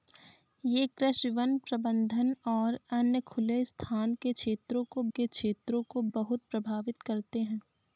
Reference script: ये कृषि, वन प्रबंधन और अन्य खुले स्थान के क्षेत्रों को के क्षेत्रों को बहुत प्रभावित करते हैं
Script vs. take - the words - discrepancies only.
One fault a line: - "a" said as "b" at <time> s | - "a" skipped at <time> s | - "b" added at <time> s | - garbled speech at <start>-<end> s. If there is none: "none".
none